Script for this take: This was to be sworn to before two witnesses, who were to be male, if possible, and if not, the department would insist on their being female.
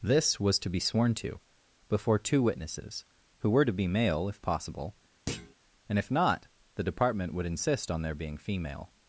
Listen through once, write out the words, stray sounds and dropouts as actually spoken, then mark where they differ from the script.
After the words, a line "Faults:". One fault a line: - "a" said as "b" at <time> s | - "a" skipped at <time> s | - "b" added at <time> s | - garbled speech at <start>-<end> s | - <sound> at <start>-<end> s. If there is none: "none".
This was to be sworn to before two witnesses, who were to be male, if possible, and if not, the department would insist on their being female.
Faults:
- thud at 5.3-5.5 s